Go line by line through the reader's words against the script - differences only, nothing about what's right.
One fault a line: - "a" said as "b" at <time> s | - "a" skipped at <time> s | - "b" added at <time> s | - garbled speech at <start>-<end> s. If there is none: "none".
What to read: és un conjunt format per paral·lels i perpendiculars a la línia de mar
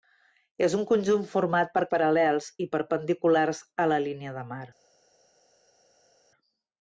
none